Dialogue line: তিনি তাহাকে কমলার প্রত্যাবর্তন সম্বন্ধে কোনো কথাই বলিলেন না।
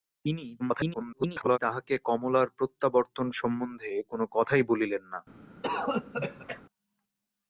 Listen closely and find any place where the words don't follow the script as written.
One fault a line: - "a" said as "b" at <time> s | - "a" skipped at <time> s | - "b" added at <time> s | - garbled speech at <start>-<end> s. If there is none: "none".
- garbled speech at 0.6-1.6 s